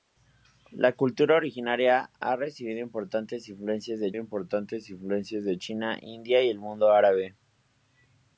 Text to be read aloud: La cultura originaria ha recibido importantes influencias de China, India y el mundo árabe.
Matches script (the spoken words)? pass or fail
fail